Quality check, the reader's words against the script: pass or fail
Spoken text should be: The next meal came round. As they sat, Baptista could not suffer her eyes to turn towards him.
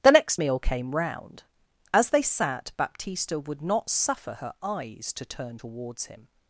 fail